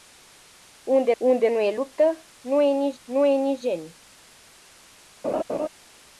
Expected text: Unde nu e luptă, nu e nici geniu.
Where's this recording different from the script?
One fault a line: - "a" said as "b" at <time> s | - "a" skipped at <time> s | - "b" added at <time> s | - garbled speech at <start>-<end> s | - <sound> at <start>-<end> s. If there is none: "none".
- "unde" added at 1.2 s
- "nu e nici" added at 3.0 s
- laugh at 5.2-5.7 s